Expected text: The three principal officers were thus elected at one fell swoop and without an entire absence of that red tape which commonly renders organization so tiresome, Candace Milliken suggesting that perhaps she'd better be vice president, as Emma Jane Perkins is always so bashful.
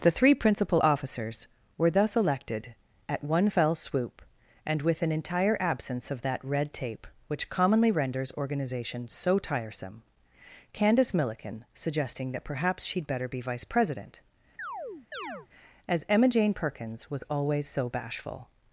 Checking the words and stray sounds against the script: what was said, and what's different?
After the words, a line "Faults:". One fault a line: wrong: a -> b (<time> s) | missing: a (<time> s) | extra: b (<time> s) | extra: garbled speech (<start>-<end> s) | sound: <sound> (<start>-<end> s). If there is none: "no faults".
The three principal officers were thus elected at one fell swoop and with an entire absence of that red tape which commonly renders organization so tiresome, Candace Milliken suggesting that perhaps she'd better be vice president, as Emma Jane Perkins was always so bashful.
Faults:
wrong: without -> with (4.8 s)
sound: chirp (14.6-15.5 s)
wrong: is -> was (17.1 s)